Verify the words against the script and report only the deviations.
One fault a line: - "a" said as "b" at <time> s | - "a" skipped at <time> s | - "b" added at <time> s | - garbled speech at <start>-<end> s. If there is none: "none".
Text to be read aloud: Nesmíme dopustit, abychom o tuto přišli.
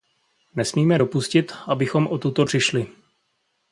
none